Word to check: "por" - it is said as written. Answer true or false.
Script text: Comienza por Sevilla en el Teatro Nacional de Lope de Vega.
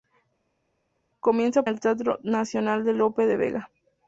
false